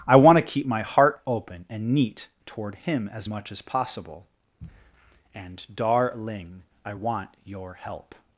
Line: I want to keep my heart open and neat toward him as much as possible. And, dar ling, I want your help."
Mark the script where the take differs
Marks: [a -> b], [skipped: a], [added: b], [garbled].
I want to keep my heart open and neat toward him as much as possible. And, dar ling, I want your help."